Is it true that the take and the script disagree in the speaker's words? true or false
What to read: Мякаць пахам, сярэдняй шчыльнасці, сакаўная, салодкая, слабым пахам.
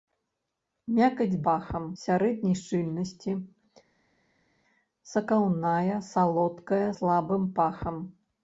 false